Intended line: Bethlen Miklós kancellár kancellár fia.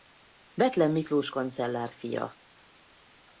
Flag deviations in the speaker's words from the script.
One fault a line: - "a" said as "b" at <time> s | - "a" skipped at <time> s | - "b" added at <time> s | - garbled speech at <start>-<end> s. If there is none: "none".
- "kancellár" skipped at 1.9 s